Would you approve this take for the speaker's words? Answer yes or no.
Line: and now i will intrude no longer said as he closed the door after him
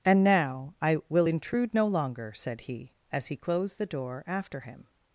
no